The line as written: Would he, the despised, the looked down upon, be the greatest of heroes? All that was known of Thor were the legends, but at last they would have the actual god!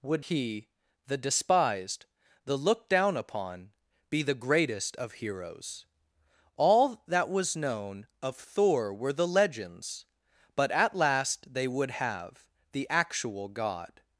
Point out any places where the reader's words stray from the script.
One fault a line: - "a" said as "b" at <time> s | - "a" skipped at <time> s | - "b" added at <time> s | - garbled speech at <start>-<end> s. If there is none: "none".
none